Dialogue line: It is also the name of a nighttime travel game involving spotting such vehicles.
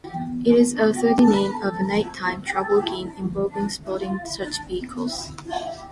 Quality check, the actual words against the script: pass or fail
pass